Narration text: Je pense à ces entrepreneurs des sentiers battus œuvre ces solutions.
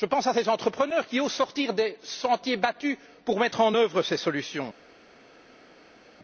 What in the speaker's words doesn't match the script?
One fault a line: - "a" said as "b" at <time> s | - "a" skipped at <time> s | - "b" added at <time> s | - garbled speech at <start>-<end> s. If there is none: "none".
- "qui osent sortir" added at 1.1 s
- "pour mettre en" added at 3.2 s